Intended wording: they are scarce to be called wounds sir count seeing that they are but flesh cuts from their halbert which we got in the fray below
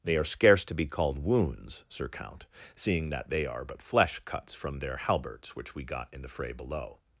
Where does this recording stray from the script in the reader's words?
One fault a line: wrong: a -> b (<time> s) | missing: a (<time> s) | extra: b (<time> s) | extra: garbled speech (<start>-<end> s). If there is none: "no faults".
wrong: halbert -> halberts (5.0 s)